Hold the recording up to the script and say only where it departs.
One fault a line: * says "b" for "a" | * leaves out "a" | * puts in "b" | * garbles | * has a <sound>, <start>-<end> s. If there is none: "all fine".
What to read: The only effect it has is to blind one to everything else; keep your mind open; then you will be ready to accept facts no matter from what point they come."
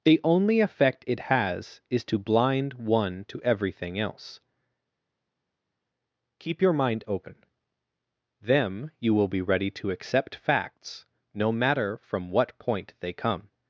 * says "them" for "then"